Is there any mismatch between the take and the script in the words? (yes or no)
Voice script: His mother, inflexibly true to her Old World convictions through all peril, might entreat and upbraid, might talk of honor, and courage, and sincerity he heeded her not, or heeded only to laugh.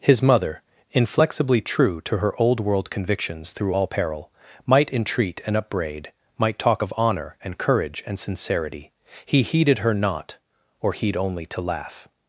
yes